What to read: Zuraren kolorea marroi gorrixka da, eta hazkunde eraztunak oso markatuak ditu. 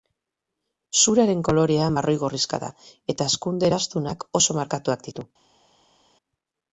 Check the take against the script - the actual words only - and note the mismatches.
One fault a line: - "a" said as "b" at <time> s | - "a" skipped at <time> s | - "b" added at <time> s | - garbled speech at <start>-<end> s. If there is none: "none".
none